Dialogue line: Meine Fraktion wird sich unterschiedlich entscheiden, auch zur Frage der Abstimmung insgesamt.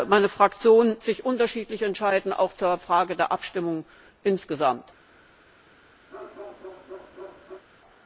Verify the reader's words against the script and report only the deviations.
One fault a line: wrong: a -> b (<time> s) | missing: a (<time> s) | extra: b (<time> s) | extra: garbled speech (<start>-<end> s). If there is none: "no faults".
missing: wird (0.9 s)